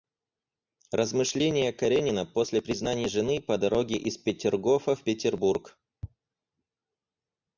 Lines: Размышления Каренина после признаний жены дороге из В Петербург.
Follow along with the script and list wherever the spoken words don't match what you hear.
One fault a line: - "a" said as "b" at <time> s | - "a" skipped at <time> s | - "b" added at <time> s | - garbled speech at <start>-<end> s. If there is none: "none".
- "по" added at 3.4 s
- "Петергофа" added at 4.2 s